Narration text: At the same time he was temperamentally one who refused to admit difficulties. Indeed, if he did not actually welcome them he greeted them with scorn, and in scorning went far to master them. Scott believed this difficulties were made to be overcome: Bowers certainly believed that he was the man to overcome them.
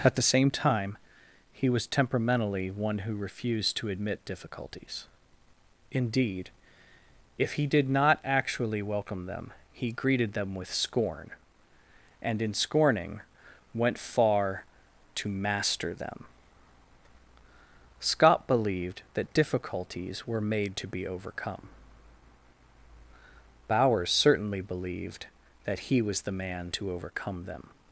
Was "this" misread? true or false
true